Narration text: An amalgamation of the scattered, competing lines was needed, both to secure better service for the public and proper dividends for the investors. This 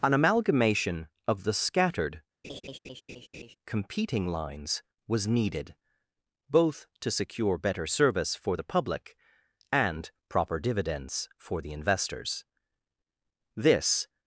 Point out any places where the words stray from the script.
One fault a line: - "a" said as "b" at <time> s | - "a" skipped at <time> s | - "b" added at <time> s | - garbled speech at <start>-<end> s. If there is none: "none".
none